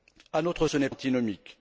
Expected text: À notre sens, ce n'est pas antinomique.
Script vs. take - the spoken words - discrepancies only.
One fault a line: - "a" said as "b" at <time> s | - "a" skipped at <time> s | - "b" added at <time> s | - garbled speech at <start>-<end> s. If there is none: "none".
- "sens" skipped at 0.7 s
- "pas" skipped at 0.9 s